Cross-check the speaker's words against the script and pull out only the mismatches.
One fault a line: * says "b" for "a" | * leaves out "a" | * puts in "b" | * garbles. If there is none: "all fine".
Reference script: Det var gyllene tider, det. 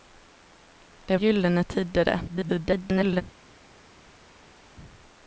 * leaves out "var"
* garbles